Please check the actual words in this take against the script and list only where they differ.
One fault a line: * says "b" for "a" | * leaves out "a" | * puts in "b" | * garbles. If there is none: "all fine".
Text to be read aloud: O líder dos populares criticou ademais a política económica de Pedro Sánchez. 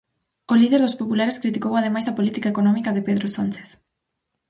all fine